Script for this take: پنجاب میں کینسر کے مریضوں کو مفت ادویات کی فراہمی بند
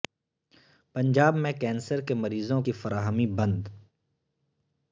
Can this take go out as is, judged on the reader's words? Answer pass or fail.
fail